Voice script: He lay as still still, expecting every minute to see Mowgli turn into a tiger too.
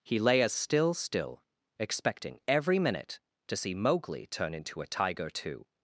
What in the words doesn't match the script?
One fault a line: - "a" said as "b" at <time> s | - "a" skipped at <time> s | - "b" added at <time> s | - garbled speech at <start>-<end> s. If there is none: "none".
none